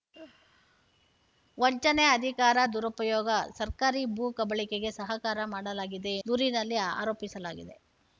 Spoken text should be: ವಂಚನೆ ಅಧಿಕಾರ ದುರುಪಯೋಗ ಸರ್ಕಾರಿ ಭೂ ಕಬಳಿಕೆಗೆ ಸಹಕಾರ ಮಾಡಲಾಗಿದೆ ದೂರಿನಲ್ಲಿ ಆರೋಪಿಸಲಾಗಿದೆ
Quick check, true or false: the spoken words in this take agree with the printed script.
true